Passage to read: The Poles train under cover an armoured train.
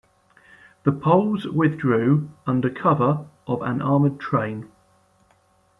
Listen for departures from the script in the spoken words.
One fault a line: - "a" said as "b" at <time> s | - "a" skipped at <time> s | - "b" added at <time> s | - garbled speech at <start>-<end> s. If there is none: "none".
- "train" said as "withdrew" at 1.4 s
- "of" added at 3.5 s